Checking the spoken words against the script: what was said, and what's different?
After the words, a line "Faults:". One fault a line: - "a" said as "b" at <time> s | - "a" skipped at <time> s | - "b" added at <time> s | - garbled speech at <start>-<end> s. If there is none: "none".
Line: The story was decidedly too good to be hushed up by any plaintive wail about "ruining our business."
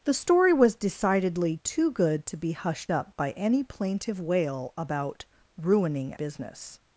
The story was decidedly too good to be hushed up by any plaintive wail about "ruining business."
Faults:
- "our" skipped at 6.1 s